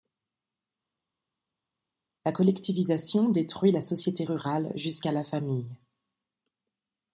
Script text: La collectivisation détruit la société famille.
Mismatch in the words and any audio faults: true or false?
true